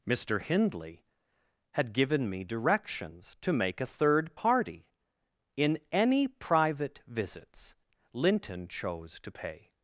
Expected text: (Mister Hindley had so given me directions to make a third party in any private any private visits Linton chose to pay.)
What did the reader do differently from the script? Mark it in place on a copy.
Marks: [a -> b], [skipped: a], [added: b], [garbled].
(Mister Hindley had [skipped: so] given me directions to make a third party in any private [skipped: any private] visits Linton chose to pay.)